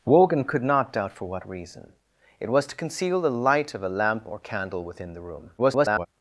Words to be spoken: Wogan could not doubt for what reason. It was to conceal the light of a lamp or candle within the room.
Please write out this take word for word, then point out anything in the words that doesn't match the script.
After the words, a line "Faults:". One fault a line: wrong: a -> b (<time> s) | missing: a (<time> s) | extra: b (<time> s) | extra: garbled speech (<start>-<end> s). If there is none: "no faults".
Wogan could not doubt for what reason. It was to conceal the light of a lamp or candle within the room. [garbled]
Faults:
extra: garbled speech (5.6-6.1 s)